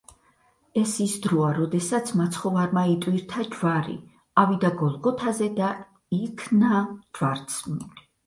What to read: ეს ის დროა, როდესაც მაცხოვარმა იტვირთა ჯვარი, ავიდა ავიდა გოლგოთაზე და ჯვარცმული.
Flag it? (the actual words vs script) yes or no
yes